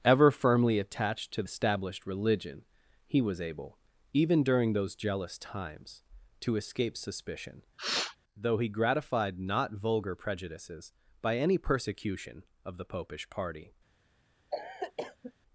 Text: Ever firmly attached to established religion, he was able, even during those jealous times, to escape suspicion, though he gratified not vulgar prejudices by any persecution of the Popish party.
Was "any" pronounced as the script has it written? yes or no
yes